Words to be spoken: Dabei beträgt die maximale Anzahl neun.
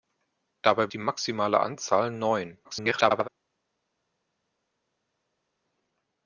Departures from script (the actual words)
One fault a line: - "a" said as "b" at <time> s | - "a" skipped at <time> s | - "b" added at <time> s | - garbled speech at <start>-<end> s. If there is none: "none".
- "beträgt" skipped at 0.9 s
- garbled speech at 2.6-3.3 s